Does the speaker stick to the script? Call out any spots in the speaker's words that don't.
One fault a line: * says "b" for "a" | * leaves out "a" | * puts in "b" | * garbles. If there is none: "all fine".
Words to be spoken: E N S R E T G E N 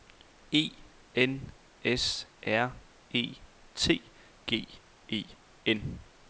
all fine